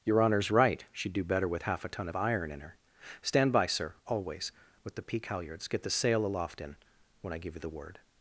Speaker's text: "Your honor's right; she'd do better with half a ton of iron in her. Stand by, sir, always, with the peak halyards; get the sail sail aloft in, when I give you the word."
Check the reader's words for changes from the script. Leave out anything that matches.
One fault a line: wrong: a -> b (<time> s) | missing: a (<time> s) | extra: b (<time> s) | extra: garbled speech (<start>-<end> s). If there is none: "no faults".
missing: sail (6.2 s)